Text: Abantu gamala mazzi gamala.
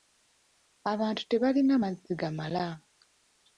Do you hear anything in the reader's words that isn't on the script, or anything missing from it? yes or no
yes